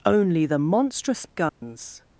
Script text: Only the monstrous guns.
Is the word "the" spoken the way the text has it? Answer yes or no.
yes